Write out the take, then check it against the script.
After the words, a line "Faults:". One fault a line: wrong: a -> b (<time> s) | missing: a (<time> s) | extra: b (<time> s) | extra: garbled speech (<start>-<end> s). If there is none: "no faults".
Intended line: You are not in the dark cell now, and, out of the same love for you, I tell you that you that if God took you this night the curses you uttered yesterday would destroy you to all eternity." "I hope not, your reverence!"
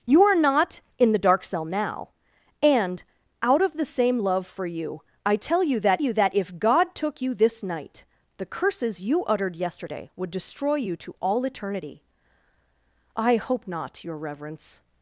You are not in the dark cell now, and, out of the same love for you, I tell you that you that if God took you this night the curses you uttered yesterday would destroy you to all eternity." "I hope not, your reverence!"
Faults:
no faults